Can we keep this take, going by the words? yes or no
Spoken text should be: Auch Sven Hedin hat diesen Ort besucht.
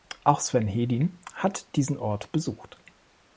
yes